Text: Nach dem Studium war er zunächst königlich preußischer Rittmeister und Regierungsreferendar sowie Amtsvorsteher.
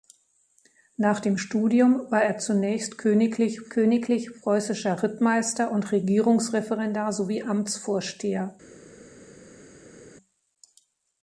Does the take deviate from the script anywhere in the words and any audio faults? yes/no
yes